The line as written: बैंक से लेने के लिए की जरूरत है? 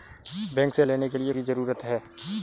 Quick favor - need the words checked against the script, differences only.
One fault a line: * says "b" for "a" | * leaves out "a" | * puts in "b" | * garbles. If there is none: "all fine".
all fine